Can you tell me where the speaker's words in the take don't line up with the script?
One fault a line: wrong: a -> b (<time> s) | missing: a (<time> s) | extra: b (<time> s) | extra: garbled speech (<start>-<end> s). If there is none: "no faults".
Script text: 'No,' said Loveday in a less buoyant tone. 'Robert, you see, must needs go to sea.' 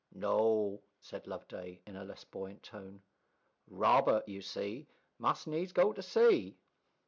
no faults